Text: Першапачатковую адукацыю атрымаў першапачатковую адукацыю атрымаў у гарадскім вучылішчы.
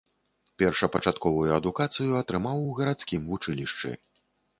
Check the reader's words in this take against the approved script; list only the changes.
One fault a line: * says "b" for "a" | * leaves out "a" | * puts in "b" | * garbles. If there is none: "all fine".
* leaves out "першапачатковую адукацыю атрымаў"